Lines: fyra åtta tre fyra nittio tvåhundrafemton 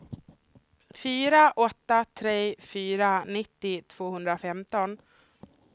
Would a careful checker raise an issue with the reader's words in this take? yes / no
no